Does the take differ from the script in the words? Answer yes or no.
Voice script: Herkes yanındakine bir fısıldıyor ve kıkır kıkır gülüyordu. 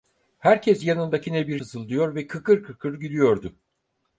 no